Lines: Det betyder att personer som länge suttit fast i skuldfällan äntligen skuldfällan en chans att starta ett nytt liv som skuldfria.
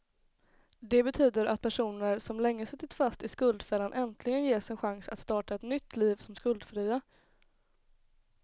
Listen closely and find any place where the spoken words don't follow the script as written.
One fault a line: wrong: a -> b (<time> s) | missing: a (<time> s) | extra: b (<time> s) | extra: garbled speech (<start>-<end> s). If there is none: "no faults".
wrong: skuldfällan -> ges (4.4 s)